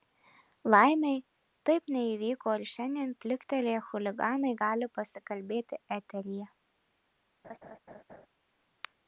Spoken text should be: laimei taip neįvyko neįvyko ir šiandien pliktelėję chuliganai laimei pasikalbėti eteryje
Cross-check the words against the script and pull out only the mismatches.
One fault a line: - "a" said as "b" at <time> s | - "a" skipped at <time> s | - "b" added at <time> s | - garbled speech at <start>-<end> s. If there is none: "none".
- "neįvyko" skipped at 2.5 s
- "laimei" said as "gali" at 4.6 s